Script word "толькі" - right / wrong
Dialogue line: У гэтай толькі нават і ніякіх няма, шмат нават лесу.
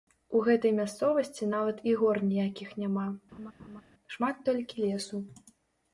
wrong